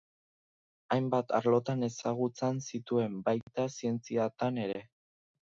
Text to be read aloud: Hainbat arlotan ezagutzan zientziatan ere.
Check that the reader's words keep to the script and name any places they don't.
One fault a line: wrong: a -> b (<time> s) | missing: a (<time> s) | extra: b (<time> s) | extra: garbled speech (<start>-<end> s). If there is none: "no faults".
extra: zituen baita (2.7 s)